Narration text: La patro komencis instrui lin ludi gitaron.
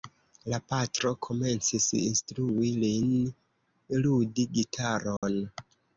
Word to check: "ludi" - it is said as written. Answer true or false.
true